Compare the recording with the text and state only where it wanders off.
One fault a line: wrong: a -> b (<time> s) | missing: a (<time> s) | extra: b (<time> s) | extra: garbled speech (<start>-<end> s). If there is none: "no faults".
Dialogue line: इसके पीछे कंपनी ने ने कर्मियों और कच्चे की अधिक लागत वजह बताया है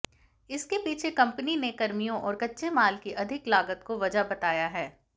missing: ने (1.7 s)
extra: माल (2.7 s)
extra: को (3.9 s)